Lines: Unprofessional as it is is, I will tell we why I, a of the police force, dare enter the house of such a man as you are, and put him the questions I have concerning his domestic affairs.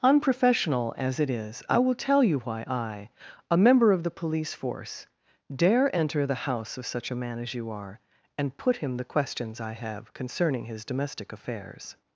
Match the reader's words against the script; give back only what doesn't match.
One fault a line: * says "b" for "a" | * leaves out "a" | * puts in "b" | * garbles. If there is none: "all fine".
* leaves out "is"
* says "you" for "we"
* puts in "member"